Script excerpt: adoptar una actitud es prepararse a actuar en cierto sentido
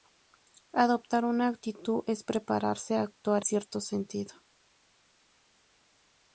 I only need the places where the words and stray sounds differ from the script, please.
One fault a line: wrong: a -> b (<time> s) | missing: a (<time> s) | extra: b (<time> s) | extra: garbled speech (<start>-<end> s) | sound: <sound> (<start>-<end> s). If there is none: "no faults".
missing: en (3.5 s)